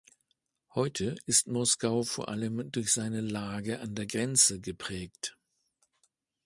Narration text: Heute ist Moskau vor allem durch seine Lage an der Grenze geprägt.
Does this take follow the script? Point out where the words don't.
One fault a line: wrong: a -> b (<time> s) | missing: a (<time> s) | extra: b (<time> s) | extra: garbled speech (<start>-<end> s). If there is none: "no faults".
no faults